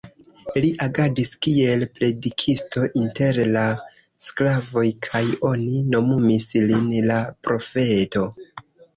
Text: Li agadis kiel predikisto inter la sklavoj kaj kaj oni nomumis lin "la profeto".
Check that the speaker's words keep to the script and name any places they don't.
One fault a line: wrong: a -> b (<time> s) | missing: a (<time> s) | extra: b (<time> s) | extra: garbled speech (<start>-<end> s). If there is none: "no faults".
missing: kaj (5.2 s)